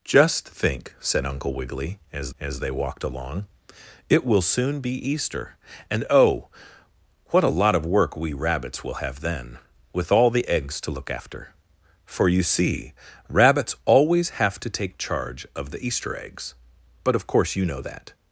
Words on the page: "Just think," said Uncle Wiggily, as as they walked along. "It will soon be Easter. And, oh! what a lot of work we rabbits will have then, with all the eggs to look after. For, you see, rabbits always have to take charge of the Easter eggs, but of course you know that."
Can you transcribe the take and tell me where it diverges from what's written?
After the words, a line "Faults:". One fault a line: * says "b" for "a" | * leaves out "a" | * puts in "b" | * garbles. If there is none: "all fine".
"Just think," said Uncle Wiggily, as as they walked along. "It will soon be Easter. And, oh! what a lot of work we rabbits will have then, with all the eggs to look after. For, you see, rabbits always have to take charge of the Easter eggs, but of course you know that."
Faults:
all fine